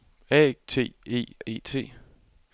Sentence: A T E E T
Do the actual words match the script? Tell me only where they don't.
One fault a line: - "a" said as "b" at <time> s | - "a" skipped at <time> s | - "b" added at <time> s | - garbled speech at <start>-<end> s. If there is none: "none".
none